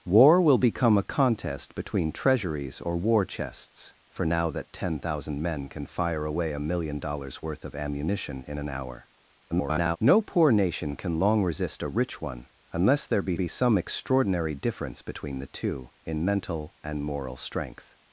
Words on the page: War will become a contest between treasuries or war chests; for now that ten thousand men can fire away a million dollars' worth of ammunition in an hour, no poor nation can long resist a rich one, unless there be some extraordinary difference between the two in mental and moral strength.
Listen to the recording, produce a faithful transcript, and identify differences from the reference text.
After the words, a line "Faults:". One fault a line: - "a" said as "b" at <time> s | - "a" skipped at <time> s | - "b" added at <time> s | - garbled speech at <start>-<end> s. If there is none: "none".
War will become a contest between treasuries or war chests; for now that ten thousand men can fire away a million dollars' worth of ammunition in an hour, [garbled] no poor nation can long resist a rich one, unless there be be some extraordinary difference between the two in mental and moral strength.
Faults:
- garbled speech at 9.5-10.0 s
- "be" added at 13.3 s